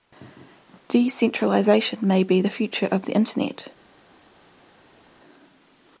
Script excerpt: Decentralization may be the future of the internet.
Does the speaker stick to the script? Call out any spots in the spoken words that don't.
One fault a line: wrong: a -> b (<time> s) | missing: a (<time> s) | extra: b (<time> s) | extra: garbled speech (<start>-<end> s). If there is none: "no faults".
no faults